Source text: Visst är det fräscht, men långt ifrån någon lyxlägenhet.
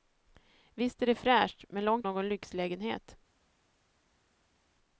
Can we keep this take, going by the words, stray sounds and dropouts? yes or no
no